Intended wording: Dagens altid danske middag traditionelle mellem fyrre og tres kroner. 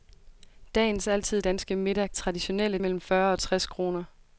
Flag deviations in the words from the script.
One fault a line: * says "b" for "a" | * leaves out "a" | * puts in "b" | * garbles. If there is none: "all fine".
all fine